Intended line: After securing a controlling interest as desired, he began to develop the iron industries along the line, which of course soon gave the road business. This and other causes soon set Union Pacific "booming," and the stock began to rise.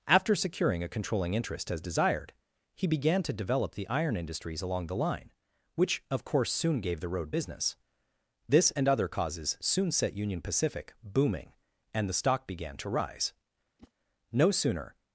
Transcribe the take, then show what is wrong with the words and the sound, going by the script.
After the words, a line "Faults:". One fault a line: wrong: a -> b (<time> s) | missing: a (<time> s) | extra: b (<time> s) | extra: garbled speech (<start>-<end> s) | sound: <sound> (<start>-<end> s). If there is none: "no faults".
After securing a controlling interest as desired, he began to develop the iron industries along the line, which of course soon gave the road business. This and other causes soon set Union Pacific "booming," and the stock began to rise. No sooner
Faults:
sound: whoosh (13.8-13.9 s)
extra: No sooner (14.3 s)